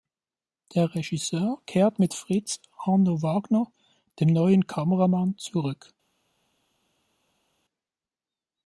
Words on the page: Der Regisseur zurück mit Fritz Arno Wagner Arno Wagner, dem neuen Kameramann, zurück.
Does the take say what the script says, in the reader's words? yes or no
no